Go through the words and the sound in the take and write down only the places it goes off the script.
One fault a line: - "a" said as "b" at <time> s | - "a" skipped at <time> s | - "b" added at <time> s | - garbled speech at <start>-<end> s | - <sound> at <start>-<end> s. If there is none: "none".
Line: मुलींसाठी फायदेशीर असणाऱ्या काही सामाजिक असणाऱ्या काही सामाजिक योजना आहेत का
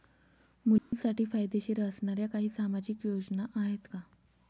- dropout at 0.8-0.9 s
- "असणाऱ्या काही सामाजिक" skipped at 3.0 s